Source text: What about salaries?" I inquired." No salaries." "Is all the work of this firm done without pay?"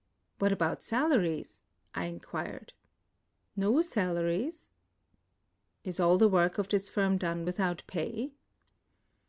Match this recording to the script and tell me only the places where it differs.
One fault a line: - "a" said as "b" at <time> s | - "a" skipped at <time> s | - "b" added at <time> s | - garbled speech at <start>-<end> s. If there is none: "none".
none